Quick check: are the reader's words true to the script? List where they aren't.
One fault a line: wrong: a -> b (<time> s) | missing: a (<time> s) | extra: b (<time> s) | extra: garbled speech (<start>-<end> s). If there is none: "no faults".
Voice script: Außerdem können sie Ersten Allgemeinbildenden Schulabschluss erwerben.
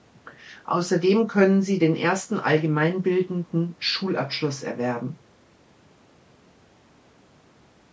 extra: den (1.8 s)